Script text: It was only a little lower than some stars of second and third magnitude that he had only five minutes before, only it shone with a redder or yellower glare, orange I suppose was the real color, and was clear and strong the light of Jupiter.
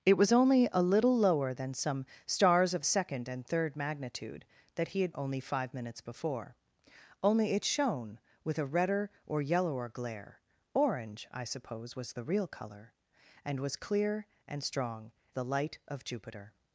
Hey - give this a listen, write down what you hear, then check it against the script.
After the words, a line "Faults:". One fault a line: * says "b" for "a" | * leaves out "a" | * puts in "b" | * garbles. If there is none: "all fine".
It was only a little lower than some stars of second and third magnitude that he had only five minutes before, only it shone with a redder or yellower glare, orange I suppose was the real color, and was clear and strong the light of Jupiter.
Faults:
all fine